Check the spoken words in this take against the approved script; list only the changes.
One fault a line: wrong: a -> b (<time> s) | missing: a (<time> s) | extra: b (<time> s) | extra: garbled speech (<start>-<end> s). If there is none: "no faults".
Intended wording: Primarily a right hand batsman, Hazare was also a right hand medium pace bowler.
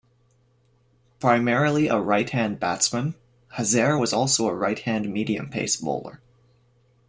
no faults